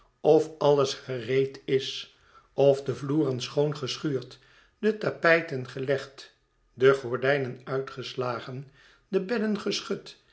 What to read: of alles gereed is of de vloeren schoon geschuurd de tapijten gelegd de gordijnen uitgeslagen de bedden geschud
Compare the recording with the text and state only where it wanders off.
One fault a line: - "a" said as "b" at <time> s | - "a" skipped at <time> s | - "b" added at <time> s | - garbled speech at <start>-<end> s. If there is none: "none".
none